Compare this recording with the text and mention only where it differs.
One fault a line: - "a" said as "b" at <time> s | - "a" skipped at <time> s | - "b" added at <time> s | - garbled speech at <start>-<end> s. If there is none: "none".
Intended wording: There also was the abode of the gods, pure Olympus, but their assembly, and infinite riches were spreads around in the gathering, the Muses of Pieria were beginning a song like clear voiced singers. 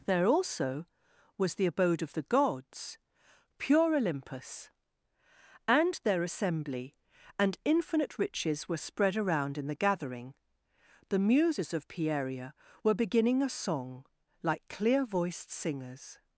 - "but" said as "and" at 5.7 s
- "spreads" said as "spread" at 8.8 s